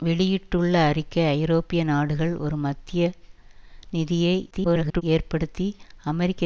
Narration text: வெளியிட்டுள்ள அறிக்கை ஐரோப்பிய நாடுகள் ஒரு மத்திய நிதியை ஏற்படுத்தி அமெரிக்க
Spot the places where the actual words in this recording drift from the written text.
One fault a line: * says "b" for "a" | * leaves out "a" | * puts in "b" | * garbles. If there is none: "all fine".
* garbles